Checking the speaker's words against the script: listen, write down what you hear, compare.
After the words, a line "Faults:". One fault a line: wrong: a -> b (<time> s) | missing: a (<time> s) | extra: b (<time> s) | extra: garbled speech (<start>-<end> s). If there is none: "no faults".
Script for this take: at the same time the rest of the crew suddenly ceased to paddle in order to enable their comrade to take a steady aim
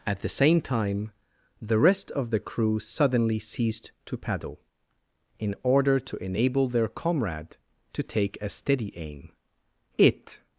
at the same time the rest of the crew suddenly ceased to paddle in order to enable their comrade to take a steady aim it
Faults:
extra: it (10.0 s)